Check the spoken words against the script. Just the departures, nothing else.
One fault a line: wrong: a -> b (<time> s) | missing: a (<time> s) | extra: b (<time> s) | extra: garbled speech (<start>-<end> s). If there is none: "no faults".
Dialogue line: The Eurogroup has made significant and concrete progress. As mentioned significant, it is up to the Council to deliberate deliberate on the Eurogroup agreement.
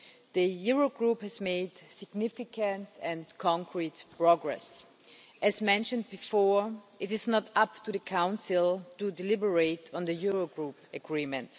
wrong: significant -> before (6.1 s)
extra: not (7.3 s)
missing: deliberate (9.9 s)